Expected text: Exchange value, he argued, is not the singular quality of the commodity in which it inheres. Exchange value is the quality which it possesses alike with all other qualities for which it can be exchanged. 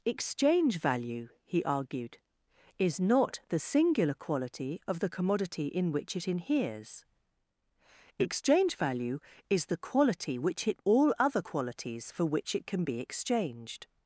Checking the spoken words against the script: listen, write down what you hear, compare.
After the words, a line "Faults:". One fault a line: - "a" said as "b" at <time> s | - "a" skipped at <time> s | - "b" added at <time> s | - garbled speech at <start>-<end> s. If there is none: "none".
Exchange value, he argued, is not the singular quality of the commodity in which it inheres. Exchange value is the quality which it all other qualities for which it can be exchanged.
Faults:
- "possesses alike with" skipped at 10.8 s